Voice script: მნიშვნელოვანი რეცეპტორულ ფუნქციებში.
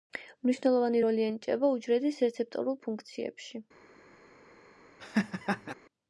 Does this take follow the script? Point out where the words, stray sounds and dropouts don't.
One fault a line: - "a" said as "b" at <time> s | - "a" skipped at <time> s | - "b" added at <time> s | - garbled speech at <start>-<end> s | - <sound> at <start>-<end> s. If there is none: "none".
- "როლი ენიჭება უჯრედის" added at 1.0 s
- laugh at 5.0-5.7 s